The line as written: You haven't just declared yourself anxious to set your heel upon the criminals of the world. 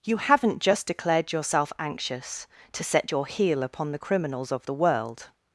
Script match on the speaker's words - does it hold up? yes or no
yes